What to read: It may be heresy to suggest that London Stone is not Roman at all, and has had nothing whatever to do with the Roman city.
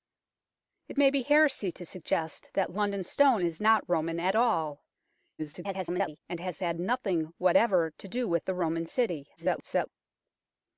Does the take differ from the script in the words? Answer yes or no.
yes